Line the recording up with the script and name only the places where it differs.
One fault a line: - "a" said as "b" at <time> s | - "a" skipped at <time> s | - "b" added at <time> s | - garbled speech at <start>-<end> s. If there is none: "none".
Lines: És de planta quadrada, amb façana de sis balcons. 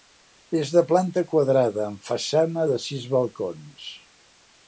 none